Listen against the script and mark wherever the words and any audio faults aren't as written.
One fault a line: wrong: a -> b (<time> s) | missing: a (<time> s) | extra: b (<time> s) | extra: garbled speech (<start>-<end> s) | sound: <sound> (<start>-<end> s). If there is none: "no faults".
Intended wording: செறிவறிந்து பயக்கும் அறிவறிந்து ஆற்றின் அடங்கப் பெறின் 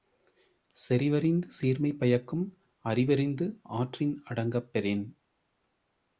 extra: சீர்மை (1.5 s)